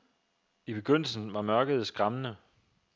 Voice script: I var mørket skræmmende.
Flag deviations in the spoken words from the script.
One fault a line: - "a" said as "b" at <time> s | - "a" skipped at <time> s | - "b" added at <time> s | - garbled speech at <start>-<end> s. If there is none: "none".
- "begyndelsen" added at 0.7 s